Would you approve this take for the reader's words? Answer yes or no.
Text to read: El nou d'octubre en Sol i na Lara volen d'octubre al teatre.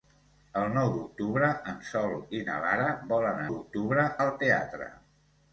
yes